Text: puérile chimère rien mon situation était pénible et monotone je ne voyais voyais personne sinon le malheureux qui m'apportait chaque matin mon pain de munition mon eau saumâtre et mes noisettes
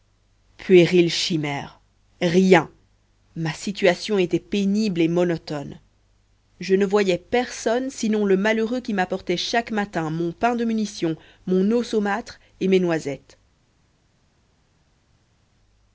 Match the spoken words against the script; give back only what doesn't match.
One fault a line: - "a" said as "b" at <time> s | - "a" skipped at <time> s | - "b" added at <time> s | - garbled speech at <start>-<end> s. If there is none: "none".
- "mon" said as "ma" at 3.4 s
- "voyais" skipped at 7.2 s